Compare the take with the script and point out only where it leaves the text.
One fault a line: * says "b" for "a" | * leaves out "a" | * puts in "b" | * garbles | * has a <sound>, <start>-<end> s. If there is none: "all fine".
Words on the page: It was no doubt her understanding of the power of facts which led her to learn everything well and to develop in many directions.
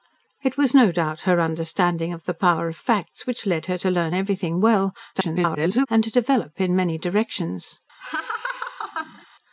* garbles
* has a laugh, 8.0-9.3 s